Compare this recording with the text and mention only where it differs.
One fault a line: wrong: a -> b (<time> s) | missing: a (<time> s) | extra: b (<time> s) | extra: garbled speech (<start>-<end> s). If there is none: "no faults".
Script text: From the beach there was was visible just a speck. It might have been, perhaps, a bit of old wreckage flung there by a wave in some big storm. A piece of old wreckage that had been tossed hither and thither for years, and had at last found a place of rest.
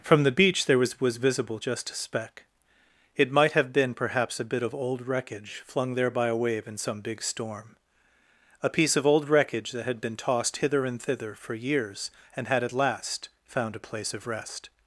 no faults